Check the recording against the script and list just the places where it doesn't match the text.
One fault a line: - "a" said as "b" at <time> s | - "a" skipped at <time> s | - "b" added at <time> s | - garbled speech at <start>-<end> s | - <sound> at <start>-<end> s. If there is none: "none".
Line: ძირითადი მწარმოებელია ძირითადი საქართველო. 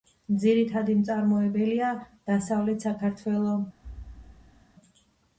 - "ძირითადი" said as "დასავლეთ" at 2.3 s
- thud at 3.8-4.7 s